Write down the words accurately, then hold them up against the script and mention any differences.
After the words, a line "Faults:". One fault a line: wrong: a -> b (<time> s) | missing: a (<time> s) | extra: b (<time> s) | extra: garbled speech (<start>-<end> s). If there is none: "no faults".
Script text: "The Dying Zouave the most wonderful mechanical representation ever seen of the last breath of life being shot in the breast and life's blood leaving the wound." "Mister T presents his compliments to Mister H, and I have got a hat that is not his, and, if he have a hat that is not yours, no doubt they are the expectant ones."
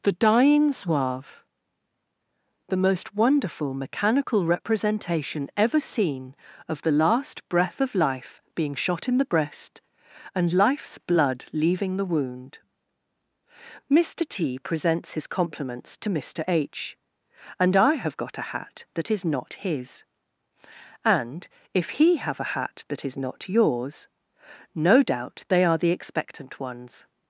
"The Dying Zouave the most wonderful mechanical representation ever seen of the last breath of life being shot in the breast and life's blood leaving the wound." "Mister T presents his compliments to Mister H, and I have got a hat that is not his, and, if he have a hat that is not yours, no doubt they are the expectant ones."
Faults:
no faults